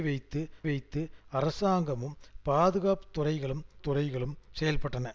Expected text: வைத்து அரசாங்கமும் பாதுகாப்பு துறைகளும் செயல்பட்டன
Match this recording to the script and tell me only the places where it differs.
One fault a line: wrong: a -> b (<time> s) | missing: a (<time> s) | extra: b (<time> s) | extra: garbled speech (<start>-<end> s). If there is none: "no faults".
extra: வைத்து (0.6 s)
extra: துறைகளும் (3.8 s)